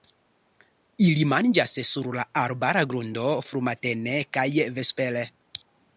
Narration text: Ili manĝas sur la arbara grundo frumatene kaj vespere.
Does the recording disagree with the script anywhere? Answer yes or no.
no